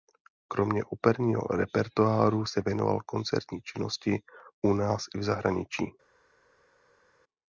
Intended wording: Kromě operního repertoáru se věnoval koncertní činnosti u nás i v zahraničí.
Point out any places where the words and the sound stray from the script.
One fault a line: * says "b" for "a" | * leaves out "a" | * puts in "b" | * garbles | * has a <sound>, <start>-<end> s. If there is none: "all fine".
all fine